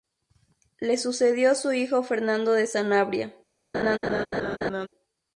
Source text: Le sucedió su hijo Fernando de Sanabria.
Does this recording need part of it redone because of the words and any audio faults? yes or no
yes